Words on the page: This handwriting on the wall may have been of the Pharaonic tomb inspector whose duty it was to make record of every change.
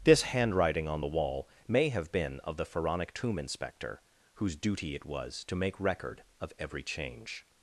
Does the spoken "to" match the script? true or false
true